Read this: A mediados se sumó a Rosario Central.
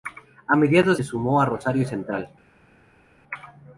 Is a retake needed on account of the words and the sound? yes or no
no